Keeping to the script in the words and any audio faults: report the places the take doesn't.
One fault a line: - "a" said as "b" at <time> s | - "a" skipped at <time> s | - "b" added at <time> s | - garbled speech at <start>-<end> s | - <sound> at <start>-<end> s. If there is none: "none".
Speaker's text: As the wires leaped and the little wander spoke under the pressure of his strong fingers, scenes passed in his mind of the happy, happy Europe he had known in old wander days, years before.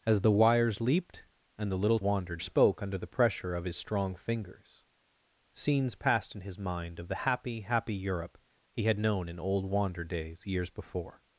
none